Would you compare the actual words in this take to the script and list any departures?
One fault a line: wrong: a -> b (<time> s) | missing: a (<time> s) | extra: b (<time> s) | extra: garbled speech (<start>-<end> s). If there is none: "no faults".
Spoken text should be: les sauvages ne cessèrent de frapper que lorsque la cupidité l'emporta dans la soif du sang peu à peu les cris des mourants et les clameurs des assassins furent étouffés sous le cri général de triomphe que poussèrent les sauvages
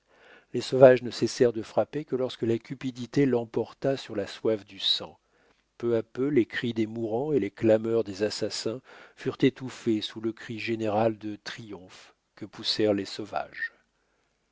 wrong: dans -> sur (4.0 s)